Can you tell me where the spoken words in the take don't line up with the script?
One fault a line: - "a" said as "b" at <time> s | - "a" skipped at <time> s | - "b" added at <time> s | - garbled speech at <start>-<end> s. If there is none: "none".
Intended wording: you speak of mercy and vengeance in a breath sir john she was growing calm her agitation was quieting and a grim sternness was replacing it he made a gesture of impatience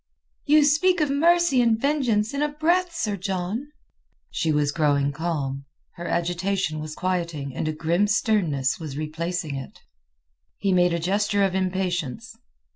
none